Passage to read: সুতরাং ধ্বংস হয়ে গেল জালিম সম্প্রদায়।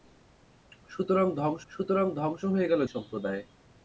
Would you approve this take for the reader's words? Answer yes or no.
no